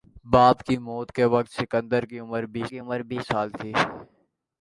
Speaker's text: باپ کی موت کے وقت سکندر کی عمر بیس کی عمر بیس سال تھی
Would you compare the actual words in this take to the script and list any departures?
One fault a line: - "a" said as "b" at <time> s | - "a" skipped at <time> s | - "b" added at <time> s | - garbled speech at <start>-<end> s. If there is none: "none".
none